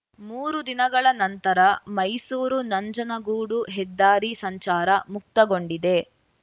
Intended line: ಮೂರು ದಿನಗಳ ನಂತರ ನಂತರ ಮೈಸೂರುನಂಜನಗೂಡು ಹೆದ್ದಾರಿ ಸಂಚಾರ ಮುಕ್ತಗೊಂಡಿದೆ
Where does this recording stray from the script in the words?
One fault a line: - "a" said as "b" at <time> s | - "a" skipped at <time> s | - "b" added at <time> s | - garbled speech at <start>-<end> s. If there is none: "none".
- "ನಂತರ" skipped at 1.6 s